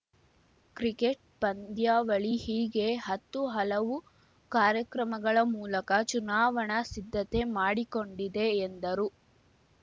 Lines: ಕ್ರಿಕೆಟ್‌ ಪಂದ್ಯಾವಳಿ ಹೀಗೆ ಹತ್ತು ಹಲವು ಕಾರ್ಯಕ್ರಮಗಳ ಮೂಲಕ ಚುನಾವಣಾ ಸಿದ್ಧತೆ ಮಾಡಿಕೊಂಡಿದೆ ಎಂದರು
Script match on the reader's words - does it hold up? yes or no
yes